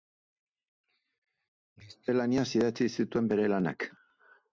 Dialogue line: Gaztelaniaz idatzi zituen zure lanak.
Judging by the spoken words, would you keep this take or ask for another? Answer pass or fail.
fail